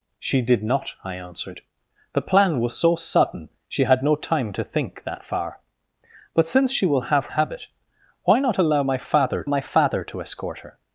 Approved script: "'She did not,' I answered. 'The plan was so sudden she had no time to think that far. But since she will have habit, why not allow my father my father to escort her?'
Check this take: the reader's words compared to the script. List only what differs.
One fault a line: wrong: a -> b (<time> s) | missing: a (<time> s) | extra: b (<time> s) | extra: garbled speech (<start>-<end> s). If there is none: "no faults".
no faults